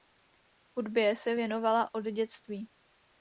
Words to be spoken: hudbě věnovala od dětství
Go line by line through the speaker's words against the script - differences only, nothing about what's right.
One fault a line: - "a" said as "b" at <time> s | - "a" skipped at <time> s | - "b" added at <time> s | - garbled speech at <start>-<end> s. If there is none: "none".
- "se" added at 1.1 s